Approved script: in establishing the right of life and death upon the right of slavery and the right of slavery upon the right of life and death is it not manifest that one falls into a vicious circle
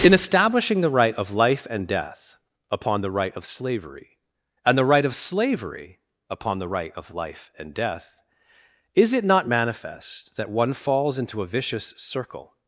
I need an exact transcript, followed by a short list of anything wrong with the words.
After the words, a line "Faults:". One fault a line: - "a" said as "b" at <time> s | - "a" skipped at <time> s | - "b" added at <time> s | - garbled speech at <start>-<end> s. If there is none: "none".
in establishing the right of life and death upon the right of slavery and the right of slavery upon the right of life and death is it not manifest that one falls into a vicious circle
Faults:
none